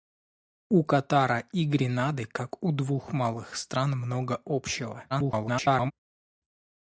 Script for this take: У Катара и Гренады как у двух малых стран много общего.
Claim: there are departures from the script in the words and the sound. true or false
true